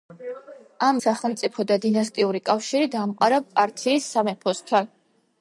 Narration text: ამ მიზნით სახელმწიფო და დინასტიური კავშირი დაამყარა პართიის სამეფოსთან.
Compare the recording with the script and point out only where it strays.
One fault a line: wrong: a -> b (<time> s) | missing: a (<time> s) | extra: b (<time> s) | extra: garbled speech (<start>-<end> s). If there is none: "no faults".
missing: მიზნით (1.0 s)